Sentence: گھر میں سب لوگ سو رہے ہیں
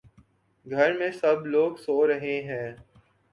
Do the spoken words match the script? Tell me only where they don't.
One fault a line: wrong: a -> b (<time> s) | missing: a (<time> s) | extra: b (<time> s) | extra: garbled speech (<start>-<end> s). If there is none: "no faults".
no faults